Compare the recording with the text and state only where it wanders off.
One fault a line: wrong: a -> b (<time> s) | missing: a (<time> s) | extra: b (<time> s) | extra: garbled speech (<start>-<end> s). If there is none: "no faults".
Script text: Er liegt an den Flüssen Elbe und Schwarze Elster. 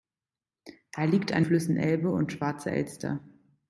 missing: den (1.4 s)